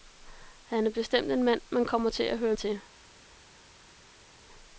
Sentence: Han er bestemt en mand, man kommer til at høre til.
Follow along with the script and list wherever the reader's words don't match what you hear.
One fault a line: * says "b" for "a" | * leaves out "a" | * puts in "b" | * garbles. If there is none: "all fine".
all fine